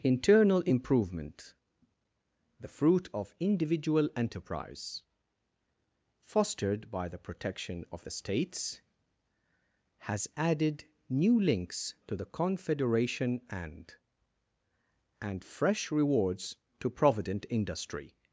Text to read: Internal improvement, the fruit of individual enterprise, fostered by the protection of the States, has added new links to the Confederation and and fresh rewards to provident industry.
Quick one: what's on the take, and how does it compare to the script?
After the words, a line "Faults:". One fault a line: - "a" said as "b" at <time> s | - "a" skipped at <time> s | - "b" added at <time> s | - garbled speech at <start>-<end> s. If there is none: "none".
Internal improvement, the fruit of individual enterprise, fostered by the protection of the States, has added new links to the Confederation and and fresh rewards to provident industry.
Faults:
none